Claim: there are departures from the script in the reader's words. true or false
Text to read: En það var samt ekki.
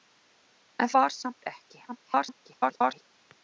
true